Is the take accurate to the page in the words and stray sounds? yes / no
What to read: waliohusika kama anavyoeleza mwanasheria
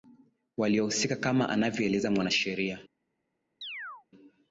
no